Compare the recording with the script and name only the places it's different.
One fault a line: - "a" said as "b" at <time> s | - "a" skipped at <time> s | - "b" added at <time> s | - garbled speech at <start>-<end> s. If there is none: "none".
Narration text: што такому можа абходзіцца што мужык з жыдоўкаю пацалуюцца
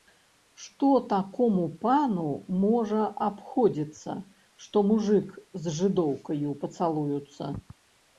- "пану" added at 1.8 s